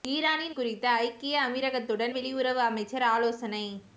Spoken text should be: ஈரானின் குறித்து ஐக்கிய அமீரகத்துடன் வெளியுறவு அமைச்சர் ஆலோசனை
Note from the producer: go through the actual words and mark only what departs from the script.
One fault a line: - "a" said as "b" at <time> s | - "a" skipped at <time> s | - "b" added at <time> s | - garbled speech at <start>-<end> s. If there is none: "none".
none